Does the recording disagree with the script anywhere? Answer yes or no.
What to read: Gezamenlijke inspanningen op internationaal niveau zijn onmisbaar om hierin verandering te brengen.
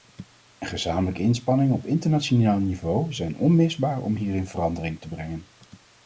no